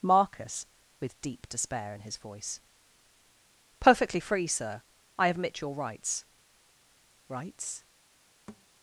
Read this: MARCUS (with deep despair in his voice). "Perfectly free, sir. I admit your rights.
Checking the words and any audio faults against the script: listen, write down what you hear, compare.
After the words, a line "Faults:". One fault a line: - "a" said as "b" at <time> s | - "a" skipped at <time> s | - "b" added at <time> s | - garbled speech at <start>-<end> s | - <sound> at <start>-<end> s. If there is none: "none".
MARCUS (with deep despair in his voice). "Perfectly free, sir. I admit your rights rights.
Faults:
- "rights" added at 7.3 s
- thud at 8.5-8.7 s